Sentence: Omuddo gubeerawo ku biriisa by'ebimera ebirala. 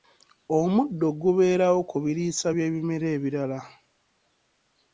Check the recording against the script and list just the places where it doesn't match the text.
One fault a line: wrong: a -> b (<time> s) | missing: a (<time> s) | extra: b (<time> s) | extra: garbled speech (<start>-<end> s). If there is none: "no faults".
no faults